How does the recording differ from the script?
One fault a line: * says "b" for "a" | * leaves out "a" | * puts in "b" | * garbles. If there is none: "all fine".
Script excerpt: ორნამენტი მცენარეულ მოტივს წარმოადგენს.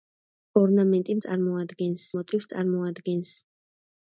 * says "წარმოადგენს" for "მცენარეულ"